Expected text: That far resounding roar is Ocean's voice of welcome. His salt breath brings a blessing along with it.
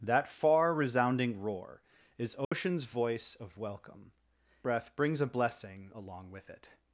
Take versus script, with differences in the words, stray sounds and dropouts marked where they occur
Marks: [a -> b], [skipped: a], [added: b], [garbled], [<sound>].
That far resounding roar is Ocean's [dropout] voice of welcome. [skipped: His salt] breath brings a blessing along with it.